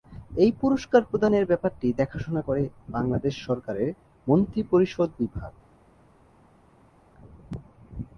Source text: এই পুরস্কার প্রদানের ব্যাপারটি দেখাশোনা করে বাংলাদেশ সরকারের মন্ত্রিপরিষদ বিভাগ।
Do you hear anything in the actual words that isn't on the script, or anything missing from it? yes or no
no